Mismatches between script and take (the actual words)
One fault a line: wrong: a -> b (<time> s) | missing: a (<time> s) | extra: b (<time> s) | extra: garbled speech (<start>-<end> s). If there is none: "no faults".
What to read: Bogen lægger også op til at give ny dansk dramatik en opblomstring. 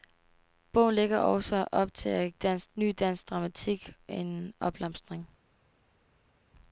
wrong: give -> dansk (2.4 s)